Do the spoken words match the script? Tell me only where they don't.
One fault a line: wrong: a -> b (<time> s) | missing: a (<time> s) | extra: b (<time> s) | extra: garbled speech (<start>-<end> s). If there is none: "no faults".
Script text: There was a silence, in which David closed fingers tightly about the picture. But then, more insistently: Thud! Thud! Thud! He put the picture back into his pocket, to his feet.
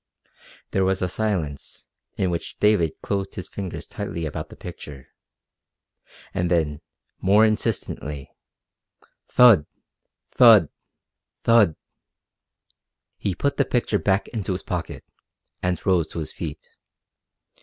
extra: his (3.4 s)
wrong: But -> And (6.3 s)
extra: and rose (15.6 s)